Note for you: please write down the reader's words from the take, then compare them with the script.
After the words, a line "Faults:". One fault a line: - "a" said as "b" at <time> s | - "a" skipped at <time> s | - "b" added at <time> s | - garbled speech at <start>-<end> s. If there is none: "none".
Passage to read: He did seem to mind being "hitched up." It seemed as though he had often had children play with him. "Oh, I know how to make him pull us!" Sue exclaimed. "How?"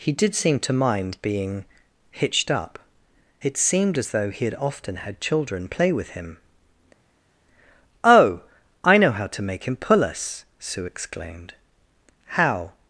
He did seem to mind being "hitched up." It seemed as though he had often had children play with him. "Oh, I know how to make him pull us!" Sue exclaimed. "How?"
Faults:
none